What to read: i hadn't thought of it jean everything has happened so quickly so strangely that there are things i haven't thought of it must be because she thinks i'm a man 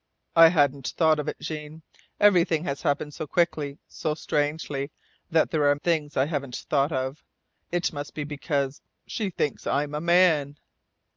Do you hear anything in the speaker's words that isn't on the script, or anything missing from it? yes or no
no